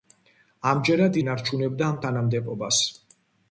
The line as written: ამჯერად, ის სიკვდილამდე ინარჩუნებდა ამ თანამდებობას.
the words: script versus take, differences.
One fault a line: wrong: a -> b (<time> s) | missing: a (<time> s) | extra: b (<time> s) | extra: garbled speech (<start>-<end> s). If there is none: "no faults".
missing: ის სიკვდილამდე (1.2 s)